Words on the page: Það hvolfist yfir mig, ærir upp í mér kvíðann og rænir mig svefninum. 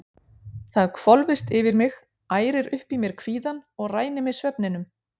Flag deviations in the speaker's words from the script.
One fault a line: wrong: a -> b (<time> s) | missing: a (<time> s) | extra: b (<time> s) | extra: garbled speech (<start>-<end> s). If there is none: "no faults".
no faults